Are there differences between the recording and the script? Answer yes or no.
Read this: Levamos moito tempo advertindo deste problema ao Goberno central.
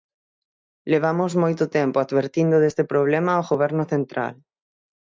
no